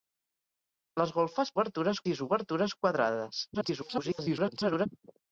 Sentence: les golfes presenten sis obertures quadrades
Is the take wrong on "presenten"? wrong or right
wrong